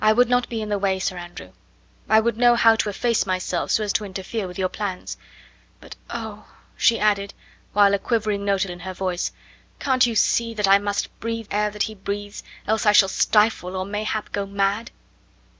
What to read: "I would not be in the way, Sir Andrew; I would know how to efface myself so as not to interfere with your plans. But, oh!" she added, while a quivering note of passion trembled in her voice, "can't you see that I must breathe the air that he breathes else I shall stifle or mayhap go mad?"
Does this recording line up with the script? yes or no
no